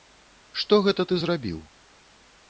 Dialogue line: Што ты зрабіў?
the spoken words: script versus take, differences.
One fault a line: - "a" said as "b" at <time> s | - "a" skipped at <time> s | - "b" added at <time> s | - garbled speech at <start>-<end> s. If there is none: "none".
- "гэта" added at 0.9 s